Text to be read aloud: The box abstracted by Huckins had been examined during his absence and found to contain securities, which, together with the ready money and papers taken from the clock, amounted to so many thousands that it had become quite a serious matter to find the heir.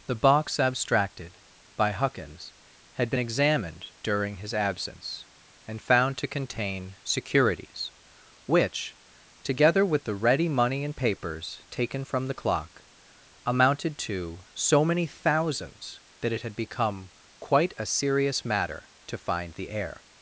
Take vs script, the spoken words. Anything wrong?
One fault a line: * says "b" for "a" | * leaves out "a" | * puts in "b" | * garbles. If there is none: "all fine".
all fine